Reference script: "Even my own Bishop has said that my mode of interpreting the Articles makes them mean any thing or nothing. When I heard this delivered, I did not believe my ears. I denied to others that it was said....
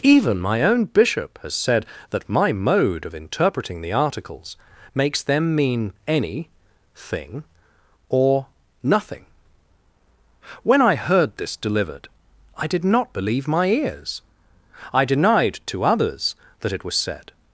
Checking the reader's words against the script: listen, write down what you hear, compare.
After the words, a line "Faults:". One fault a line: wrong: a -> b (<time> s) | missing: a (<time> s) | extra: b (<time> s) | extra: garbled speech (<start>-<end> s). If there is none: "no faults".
"Even my own Bishop has said that my mode of interpreting the Articles makes them mean any thing or nothing. When I heard this delivered, I did not believe my ears. I denied to others that it was said....
Faults:
no faults